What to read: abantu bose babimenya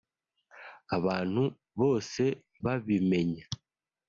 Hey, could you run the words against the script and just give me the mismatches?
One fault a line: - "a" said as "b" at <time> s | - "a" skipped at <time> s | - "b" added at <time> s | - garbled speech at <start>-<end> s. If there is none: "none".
none